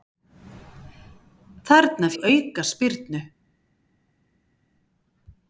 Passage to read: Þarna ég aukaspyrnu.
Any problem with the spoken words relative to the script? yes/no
no